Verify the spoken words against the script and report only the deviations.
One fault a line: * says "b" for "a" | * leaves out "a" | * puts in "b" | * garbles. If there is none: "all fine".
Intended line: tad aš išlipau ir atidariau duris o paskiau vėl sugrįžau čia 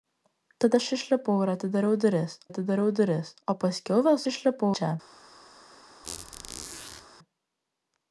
* puts in "atidariau duris"
* says "išlipau" for "sugrįžau"